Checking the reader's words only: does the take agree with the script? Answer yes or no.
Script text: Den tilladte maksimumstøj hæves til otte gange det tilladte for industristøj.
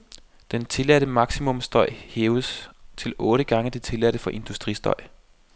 yes